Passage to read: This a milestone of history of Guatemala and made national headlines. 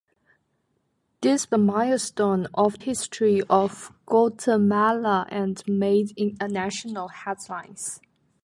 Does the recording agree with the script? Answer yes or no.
yes